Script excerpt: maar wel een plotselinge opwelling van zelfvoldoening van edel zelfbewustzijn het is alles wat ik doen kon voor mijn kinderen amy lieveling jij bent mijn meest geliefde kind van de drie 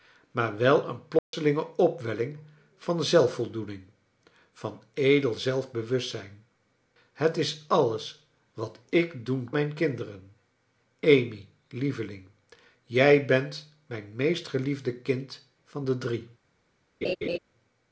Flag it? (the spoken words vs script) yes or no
yes